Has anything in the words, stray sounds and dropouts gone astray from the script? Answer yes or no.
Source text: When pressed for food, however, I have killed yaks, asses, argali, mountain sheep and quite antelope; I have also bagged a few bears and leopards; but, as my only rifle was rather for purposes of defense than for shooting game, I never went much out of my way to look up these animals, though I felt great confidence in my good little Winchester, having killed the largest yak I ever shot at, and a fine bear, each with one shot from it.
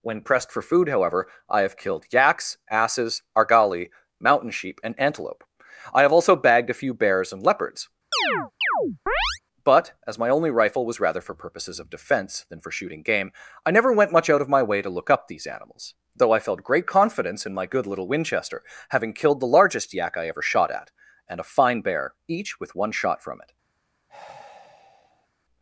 yes